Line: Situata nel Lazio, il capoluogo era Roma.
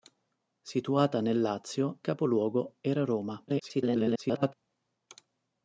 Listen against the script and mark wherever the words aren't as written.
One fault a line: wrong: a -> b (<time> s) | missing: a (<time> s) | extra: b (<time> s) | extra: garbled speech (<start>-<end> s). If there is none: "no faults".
missing: il (2.0 s)
extra: garbled speech (3.5-4.5 s)